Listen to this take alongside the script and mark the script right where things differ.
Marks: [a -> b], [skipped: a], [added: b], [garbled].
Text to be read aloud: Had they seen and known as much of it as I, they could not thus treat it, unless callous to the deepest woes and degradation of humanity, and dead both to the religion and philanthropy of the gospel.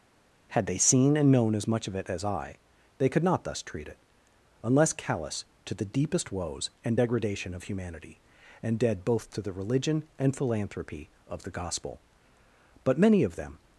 Had they seen and known as much of it as I, they could not thus treat it, unless callous to the deepest woes and degradation of humanity, and dead both to the religion and philanthropy of the gospel. [added: But many of them]